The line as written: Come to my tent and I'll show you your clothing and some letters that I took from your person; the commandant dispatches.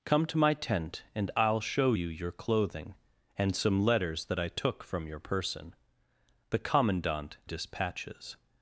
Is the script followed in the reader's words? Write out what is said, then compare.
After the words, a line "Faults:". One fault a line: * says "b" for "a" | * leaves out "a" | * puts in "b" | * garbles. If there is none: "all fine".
Come to my tent and I'll show you your clothing and some letters that I took from your person; the commandant dispatches.
Faults:
all fine